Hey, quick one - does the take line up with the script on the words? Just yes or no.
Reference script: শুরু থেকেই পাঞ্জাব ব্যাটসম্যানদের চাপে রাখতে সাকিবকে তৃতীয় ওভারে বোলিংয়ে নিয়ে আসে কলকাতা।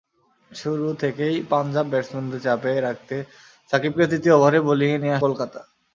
no